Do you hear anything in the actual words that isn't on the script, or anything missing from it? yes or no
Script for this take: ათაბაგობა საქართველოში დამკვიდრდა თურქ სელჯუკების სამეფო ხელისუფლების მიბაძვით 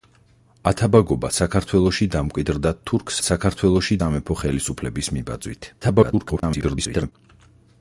yes